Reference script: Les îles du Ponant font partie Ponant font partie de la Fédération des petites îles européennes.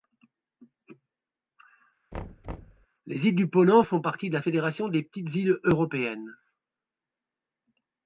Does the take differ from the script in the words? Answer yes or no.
yes